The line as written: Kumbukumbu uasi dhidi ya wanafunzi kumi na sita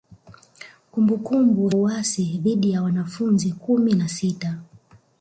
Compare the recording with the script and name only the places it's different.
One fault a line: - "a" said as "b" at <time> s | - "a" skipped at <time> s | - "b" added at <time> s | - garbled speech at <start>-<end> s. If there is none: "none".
none